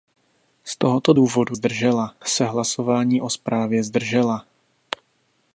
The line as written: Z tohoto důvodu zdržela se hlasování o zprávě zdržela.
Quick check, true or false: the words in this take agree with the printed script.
true